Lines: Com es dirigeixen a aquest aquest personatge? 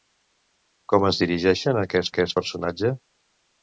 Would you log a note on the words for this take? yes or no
no